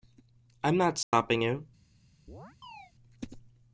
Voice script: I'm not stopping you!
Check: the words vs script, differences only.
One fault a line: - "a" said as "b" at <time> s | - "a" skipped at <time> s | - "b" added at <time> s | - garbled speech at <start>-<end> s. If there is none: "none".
none